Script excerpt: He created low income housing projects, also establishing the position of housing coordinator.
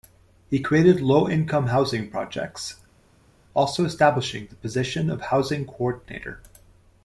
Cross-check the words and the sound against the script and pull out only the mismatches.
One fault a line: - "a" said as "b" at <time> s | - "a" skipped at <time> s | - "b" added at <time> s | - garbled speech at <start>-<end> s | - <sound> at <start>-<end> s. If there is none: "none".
none